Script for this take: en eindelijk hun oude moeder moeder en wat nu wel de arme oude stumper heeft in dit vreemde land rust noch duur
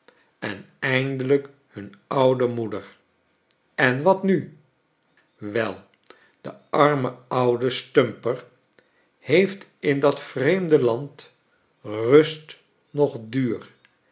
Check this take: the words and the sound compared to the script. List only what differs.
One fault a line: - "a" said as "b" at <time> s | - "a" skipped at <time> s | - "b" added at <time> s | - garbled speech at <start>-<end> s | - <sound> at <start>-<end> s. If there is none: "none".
- "moeder" skipped at 3.0 s
- "dit" said as "dat" at 10.0 s